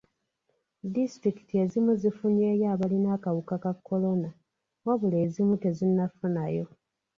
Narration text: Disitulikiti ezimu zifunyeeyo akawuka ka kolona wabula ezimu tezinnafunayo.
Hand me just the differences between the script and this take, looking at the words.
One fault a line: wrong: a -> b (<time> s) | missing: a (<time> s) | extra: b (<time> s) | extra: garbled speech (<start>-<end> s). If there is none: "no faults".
extra: abalina (2.7 s)